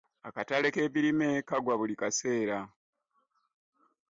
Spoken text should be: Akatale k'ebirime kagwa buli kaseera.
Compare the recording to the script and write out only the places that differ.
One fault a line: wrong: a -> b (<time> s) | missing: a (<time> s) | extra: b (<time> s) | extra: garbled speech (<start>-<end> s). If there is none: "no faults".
no faults